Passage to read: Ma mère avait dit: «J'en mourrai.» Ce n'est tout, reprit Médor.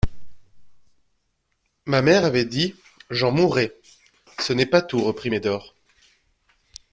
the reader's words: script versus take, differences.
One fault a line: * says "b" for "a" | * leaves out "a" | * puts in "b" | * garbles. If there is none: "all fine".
* puts in "pas"